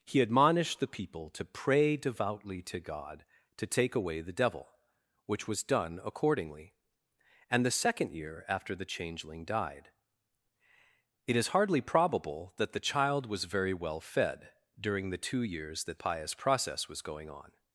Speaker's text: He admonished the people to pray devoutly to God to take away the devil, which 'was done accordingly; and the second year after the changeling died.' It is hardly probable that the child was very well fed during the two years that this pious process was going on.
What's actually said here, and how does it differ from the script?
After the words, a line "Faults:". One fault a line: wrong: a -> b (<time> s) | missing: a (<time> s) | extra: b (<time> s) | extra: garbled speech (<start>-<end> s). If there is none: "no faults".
He admonished the people to pray devoutly to God to take away the devil, which 'was done accordingly; and the second year after the changeling died.' It is hardly probable that the child was very well fed during the two years that pious process was going on.
Faults:
missing: this (16.0 s)